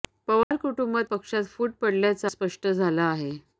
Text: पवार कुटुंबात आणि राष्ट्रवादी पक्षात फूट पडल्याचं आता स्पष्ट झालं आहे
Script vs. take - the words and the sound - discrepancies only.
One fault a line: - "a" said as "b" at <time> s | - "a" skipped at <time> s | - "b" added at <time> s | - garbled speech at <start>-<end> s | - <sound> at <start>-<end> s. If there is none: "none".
- dropout at 0.4-0.5 s
- "आणि राष्ट्रवादी" skipped at 1.1 s
- "आता" skipped at 2.3 s